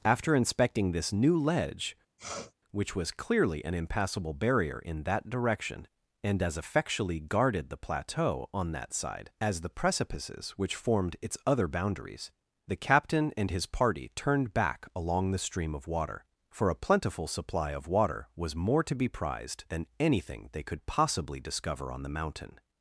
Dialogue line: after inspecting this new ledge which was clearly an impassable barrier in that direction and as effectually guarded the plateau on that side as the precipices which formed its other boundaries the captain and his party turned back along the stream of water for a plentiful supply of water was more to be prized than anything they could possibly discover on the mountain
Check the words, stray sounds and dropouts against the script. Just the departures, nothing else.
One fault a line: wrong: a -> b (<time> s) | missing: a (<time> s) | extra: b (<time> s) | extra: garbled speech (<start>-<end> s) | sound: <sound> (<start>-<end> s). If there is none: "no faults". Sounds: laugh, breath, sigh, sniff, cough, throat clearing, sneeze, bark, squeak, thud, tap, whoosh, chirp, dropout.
sound: sniff (2.2-2.5 s)